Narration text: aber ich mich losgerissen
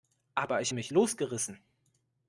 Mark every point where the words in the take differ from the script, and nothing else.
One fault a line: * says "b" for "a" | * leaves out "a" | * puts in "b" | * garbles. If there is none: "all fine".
all fine